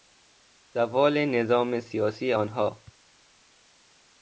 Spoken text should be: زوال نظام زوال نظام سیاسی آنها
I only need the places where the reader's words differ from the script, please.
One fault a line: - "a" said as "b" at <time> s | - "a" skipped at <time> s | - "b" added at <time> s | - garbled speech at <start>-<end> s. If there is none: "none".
- "زوال نظام" skipped at 1.8 s